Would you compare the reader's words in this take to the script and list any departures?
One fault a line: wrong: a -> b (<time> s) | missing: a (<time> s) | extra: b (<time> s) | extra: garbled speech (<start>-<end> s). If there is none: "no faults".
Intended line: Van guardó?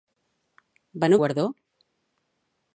no faults